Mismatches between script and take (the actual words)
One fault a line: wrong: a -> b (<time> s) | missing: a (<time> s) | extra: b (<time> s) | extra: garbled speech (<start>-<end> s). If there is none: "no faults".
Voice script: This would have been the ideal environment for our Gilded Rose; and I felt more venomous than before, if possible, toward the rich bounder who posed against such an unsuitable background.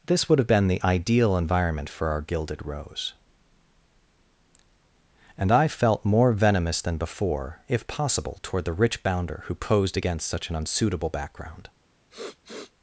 no faults